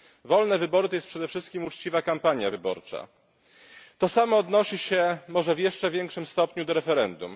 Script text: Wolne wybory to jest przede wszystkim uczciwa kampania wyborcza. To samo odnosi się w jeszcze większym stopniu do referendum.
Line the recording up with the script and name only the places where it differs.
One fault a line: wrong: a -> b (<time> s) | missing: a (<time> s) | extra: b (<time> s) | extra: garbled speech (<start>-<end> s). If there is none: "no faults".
extra: może (5.3 s)